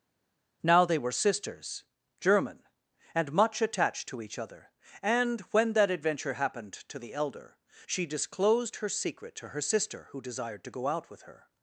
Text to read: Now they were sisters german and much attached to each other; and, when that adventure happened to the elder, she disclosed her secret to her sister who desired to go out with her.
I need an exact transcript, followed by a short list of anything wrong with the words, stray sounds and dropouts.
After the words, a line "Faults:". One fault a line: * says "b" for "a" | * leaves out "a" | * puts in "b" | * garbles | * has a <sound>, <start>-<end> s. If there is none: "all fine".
Now they were sisters german and much attached to each other; and, when that adventure happened to the elder, she disclosed her secret to her sister who desired to go out with her.
Faults:
all fine